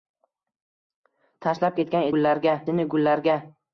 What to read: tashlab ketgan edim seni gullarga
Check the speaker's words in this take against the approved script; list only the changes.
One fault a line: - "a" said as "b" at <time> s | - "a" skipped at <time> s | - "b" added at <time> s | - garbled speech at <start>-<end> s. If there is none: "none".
- "edim" said as "gullarga" at 2.1 s